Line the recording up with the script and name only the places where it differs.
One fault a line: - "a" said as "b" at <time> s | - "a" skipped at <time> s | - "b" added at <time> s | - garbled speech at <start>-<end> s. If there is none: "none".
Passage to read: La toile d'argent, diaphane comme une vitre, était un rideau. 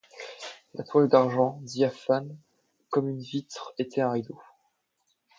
none